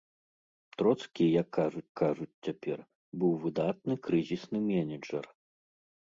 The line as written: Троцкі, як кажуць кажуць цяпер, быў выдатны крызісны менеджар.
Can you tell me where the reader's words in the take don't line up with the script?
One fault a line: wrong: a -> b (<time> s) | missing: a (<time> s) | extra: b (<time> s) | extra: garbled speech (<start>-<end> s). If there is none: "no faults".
no faults